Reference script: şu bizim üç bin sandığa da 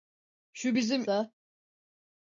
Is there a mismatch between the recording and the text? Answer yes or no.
yes